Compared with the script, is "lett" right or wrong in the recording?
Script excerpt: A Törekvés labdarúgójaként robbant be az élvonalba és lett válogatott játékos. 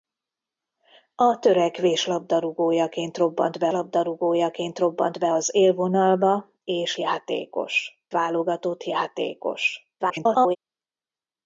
wrong